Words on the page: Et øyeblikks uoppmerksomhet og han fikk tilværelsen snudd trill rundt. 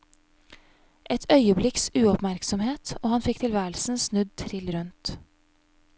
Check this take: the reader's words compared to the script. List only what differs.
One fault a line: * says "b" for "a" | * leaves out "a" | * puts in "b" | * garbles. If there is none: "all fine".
all fine